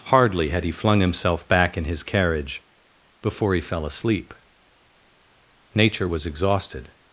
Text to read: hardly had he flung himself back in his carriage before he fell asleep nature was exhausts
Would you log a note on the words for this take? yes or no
yes